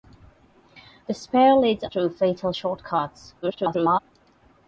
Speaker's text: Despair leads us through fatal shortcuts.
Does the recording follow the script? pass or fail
fail